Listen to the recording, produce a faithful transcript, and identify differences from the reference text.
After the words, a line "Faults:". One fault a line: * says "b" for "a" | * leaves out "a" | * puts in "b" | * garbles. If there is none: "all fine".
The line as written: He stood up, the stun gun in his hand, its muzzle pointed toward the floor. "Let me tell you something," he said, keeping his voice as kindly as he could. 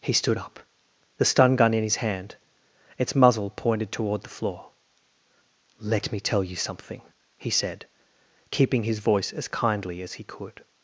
He stood up, the stun gun in his hand, its muzzle pointed toward the floor. "Let me tell you something," he said, keeping his voice as kindly as he could.
Faults:
all fine